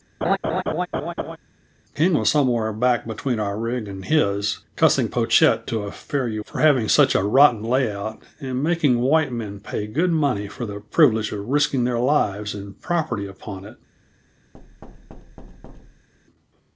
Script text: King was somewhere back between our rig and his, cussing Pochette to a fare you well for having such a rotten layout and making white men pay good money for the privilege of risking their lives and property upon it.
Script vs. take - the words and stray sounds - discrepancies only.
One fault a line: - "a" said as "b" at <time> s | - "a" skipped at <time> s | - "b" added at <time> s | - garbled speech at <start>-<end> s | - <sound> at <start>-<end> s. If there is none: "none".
- laugh at 0.2-1.4 s
- "well" skipped at 6.4 s
- thud at 14.5-16.1 s